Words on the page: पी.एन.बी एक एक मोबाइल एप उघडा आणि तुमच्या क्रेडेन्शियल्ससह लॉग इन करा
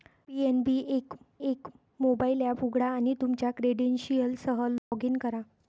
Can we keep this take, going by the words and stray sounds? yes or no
no